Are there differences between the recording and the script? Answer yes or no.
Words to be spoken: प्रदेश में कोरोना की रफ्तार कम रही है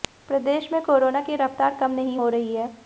yes